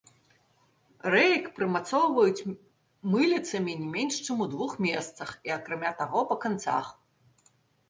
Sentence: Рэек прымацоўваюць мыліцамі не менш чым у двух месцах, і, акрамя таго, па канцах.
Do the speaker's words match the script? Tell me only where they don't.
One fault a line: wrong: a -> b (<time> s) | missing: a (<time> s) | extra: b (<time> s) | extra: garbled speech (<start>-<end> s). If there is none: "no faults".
no faults